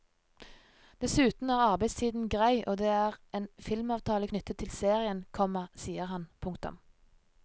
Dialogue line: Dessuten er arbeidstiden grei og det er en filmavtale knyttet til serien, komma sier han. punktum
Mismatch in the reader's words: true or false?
false